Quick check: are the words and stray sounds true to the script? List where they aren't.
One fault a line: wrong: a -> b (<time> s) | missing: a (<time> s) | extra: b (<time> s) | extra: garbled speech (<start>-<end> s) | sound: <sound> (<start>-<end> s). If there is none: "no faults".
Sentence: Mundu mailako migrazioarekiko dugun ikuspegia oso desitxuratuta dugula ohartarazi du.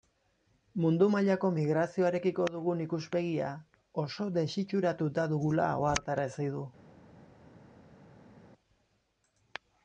no faults